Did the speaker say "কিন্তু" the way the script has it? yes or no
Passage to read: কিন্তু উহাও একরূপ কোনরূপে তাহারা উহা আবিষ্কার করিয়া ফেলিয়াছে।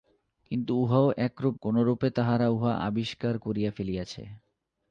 yes